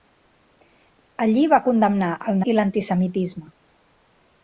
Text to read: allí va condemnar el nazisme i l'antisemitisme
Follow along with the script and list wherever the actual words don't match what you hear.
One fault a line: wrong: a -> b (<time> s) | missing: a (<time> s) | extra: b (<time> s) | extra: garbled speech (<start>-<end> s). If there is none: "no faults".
missing: nazisme (2.4 s)